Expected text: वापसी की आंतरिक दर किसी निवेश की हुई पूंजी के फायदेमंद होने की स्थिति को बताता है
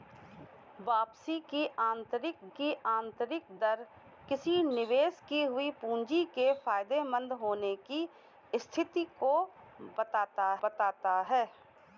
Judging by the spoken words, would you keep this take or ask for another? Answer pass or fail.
fail